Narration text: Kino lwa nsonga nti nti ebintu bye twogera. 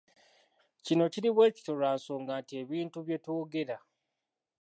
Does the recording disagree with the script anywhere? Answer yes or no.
yes